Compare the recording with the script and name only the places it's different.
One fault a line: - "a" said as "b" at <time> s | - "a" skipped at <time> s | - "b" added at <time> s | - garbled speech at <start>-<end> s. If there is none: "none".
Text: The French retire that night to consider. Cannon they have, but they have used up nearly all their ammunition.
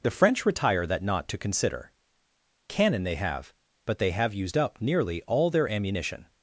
- "night" said as "knot" at 1.0 s